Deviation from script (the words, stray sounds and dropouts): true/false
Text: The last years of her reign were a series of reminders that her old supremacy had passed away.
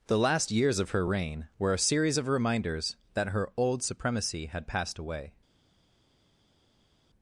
false